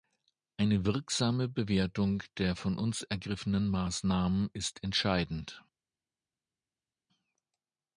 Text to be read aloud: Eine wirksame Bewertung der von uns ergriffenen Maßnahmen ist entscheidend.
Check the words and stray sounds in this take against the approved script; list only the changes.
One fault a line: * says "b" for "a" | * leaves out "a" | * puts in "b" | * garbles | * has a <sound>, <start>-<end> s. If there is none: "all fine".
all fine